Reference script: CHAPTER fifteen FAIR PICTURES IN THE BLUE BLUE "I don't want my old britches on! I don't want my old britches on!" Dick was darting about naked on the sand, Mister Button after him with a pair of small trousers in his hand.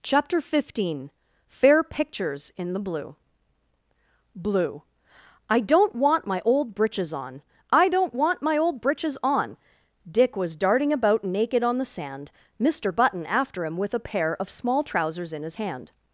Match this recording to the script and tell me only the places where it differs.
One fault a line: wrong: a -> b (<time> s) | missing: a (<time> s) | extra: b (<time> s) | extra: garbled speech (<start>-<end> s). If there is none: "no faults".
no faults